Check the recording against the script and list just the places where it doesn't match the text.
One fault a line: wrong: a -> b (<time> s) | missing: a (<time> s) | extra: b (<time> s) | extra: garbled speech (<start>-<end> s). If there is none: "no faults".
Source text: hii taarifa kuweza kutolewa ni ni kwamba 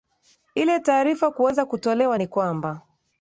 wrong: hii -> ile (0.6 s)
missing: ni (2.3 s)